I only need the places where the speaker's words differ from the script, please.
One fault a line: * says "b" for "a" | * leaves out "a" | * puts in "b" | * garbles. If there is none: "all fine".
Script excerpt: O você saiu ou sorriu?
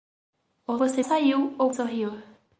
all fine